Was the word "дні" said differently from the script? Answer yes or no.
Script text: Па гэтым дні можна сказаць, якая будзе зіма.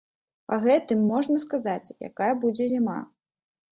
yes